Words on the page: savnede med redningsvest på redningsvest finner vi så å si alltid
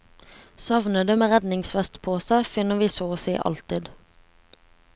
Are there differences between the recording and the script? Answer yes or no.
yes